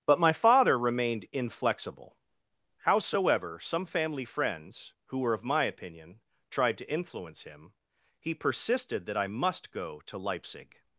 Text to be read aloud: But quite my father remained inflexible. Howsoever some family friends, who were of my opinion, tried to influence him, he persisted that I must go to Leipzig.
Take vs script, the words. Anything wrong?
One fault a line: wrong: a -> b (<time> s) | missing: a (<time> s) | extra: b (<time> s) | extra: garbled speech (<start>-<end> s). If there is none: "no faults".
missing: quite (0.2 s)